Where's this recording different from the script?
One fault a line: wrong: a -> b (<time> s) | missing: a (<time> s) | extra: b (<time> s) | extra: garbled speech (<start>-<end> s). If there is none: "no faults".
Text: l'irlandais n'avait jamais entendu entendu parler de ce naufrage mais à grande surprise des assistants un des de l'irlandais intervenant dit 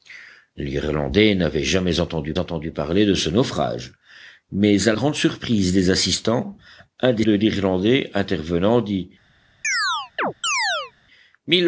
no faults